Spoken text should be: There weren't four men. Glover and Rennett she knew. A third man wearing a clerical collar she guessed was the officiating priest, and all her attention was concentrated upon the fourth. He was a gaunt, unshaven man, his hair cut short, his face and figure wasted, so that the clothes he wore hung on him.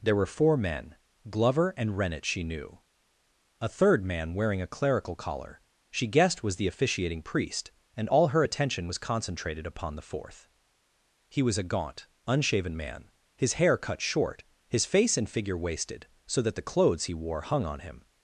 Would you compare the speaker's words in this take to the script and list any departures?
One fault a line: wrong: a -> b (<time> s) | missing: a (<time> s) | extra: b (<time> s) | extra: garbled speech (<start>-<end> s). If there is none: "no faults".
wrong: weren't -> were (0.1 s)